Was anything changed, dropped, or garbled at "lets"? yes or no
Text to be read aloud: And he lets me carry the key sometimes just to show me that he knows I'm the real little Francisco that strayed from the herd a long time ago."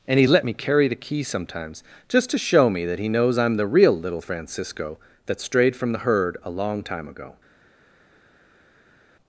yes